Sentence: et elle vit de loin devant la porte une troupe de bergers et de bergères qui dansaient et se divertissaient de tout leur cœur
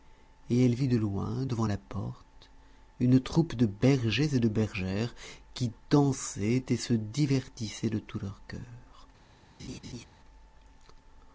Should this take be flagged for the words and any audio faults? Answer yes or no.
yes